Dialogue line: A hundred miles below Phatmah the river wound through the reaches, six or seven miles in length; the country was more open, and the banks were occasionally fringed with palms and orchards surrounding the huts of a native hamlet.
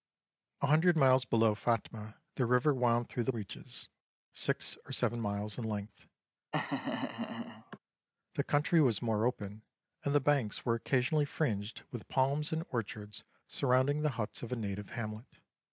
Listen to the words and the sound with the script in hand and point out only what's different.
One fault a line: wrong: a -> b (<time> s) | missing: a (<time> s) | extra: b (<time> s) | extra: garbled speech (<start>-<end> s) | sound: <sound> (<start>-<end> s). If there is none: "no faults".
sound: laugh (6.5-7.8 s)